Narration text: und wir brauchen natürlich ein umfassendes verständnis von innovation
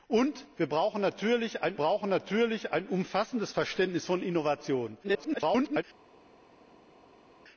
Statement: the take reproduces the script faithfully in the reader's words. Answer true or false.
false